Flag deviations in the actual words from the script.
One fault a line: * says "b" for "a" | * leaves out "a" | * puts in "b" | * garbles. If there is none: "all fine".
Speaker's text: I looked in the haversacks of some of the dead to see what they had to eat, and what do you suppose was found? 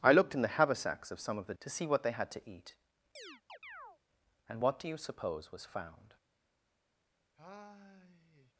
* leaves out "dead"